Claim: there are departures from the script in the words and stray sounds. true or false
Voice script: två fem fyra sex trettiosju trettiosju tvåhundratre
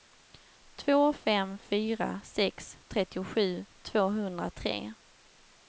true